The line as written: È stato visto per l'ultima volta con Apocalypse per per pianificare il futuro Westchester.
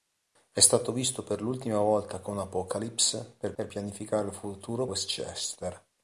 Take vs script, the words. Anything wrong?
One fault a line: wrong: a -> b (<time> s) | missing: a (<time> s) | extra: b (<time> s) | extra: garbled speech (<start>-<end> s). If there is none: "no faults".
no faults